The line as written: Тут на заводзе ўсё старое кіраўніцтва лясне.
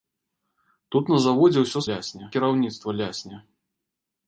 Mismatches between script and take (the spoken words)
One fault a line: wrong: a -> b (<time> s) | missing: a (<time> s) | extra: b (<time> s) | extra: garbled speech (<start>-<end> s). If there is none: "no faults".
wrong: старое -> лясне (1.9 s)